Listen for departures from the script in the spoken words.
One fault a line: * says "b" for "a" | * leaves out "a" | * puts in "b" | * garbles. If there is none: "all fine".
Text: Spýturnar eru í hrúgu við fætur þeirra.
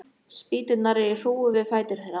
all fine